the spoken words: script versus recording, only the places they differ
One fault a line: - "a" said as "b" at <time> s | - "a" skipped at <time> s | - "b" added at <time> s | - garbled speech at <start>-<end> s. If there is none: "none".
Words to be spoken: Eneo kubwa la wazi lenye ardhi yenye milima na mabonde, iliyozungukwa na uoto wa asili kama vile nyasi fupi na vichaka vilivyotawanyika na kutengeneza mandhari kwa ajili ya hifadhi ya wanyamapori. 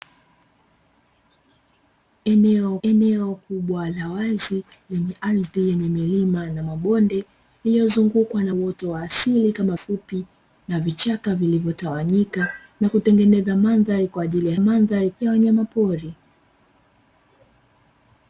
- "eneo" added at 2.8 s
- "vile nyasi" skipped at 9.8 s
- "hifadhi" said as "mandhari" at 14.6 s